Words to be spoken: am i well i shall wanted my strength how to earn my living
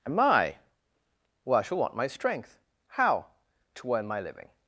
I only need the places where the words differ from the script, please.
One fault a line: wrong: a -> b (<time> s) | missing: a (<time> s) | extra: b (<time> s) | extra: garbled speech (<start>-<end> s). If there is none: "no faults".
wrong: wanted -> want (1.8 s)